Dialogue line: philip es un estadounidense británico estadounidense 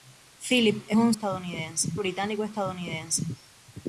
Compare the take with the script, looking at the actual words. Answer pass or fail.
pass